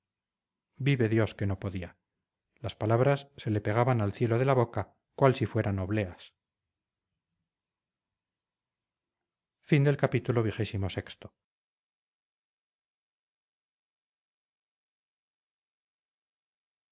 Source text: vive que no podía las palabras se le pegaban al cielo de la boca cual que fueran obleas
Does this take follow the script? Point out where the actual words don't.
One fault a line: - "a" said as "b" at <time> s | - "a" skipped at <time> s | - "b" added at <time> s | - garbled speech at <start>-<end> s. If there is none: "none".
- "dios" added at 1.1 s
- "que" said as "si" at 5.3 s